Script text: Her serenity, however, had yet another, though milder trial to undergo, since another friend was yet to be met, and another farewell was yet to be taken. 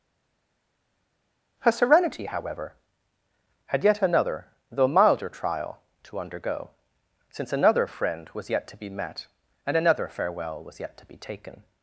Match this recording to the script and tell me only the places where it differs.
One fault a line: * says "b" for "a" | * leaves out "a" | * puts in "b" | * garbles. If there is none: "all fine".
all fine